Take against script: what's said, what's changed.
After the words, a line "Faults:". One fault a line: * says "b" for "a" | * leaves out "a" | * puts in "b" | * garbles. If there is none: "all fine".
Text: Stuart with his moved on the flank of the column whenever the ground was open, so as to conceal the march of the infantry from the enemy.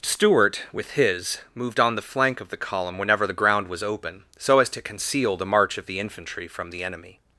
Stuart with his moved on the flank of the column whenever the ground was open, so as to conceal the march of the infantry from the enemy.
Faults:
all fine